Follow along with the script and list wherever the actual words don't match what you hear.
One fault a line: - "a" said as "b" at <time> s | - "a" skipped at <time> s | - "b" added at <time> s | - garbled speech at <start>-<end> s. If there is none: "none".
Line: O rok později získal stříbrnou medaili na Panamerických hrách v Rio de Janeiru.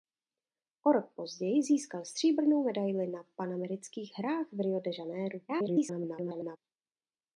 - garbled speech at 5.5-6.6 s